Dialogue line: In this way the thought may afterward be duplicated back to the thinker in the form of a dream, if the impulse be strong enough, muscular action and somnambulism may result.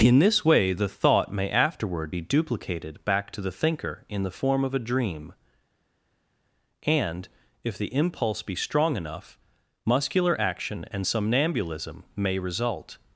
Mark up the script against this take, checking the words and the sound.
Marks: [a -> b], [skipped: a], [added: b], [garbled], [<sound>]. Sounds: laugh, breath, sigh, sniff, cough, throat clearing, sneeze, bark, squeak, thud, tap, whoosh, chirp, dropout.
In this way the thought may afterward be duplicated back to the thinker in the form of a dream, [added: and] if the impulse be strong enough, muscular action and somnambulism may result.